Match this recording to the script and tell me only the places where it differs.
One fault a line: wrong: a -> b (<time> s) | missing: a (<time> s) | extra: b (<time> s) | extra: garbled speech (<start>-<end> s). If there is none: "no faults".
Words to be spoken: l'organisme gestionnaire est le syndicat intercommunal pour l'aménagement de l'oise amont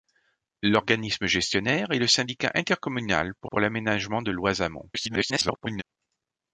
extra: pour (3.4 s)
extra: garbled speech (4.9-5.8 s)